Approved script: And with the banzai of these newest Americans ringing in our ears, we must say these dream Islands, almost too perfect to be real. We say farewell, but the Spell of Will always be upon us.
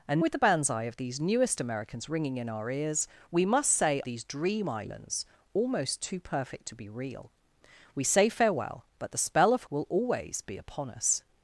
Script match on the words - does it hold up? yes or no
yes